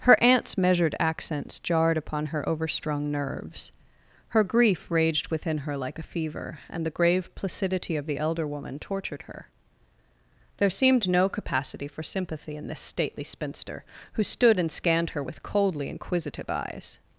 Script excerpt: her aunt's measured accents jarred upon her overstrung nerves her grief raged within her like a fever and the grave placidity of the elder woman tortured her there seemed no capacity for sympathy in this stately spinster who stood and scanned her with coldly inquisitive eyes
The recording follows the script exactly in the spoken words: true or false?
true